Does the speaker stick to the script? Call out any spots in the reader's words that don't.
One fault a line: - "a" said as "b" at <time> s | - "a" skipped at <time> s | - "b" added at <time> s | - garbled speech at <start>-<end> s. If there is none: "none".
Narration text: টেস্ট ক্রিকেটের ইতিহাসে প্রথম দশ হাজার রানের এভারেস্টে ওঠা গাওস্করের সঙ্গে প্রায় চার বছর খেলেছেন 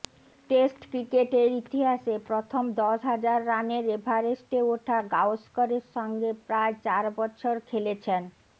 none